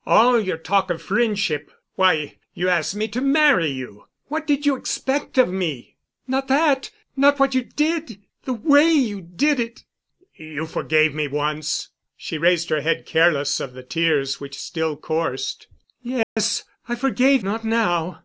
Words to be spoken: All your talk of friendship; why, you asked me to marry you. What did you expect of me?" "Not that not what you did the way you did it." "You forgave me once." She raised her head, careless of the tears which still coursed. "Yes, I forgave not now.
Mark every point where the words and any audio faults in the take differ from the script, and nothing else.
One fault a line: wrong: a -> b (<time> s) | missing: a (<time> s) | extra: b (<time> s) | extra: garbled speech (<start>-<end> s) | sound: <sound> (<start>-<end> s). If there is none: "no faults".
sound: dropout (16.2-16.4 s)